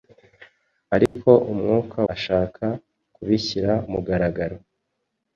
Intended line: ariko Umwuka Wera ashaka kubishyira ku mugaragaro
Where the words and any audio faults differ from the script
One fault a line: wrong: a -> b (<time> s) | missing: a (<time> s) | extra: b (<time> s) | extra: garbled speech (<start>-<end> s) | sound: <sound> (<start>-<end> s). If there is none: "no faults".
sound: dropout (1.1-1.2 s)
missing: Wera (2.0 s)
missing: ku (3.7 s)